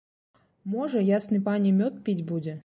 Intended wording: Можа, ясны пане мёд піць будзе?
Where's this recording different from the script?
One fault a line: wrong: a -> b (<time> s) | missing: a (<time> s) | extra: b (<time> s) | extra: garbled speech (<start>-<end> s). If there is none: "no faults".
no faults